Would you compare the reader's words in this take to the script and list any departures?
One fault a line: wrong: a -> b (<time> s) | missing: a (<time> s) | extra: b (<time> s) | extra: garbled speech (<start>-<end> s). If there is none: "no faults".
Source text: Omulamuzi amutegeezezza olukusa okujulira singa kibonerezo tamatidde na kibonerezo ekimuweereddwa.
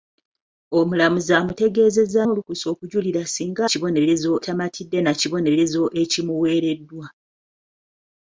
no faults